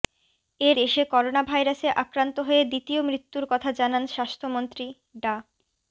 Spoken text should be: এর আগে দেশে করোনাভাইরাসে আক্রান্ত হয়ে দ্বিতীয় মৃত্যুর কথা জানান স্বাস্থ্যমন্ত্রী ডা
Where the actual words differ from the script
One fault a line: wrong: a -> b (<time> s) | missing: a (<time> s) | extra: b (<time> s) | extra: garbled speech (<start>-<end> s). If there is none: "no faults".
missing: আগে (0.8 s)